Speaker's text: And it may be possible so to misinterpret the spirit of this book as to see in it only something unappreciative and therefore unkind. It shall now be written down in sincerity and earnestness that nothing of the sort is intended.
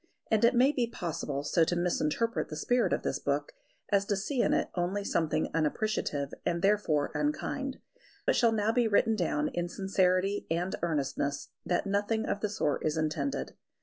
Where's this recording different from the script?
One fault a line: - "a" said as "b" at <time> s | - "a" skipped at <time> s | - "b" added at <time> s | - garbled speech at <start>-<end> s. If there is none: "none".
none